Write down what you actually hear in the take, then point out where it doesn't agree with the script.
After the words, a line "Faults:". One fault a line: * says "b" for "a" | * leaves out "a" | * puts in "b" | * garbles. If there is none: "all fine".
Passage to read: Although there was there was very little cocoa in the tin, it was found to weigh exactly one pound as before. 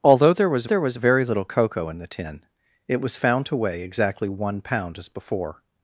Although there was there was very little cocoa in the tin, it was found to weigh exactly one pound as before.
Faults:
all fine